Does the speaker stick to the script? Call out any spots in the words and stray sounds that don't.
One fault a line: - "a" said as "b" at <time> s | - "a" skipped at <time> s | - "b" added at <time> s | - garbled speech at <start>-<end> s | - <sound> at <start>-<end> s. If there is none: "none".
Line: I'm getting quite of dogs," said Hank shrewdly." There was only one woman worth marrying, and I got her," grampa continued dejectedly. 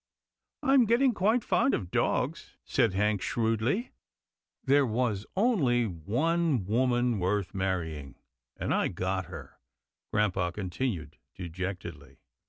- "fond" added at 1.4 s